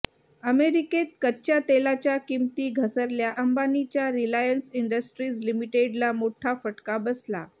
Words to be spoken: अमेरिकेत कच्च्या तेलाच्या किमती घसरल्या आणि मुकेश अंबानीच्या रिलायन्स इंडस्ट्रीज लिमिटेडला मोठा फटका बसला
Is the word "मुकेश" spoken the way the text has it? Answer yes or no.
no